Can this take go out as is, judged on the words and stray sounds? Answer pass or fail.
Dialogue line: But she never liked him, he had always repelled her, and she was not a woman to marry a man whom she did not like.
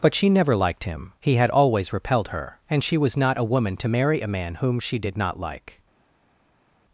pass